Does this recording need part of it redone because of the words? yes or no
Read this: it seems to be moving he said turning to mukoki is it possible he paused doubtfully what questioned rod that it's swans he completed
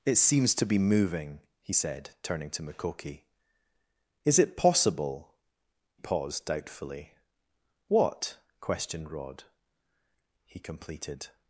yes